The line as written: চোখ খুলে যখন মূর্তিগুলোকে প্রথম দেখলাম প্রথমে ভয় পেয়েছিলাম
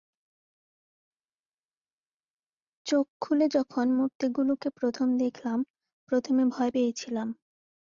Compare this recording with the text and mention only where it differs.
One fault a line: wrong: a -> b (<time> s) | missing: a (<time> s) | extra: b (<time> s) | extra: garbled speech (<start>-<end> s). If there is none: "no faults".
no faults